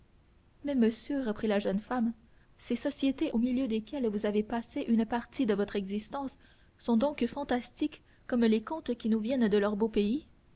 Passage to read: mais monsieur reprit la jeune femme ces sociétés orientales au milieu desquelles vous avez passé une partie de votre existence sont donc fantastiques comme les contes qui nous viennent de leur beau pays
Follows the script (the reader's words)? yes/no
no